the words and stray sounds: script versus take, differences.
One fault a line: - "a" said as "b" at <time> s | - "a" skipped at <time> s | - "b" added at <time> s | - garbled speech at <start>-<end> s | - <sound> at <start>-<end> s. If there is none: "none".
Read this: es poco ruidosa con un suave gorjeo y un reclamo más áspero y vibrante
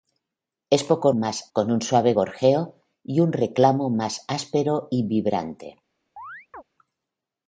- "ruidosa" said as "más" at 1.1 s
- chirp at 6.2-6.6 s